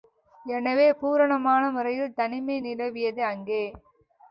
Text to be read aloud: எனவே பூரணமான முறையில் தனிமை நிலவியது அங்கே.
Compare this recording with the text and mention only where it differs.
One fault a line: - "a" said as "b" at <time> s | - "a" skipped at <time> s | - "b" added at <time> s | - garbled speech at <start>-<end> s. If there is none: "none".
none